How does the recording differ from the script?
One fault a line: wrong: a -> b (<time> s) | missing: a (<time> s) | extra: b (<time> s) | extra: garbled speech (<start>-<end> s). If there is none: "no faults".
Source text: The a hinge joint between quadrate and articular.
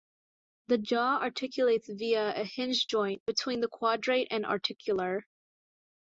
extra: jaw articulates via (0.8 s)
extra: the (3.6 s)